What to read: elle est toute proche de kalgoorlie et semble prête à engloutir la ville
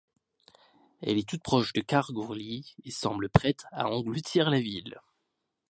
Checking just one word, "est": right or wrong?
right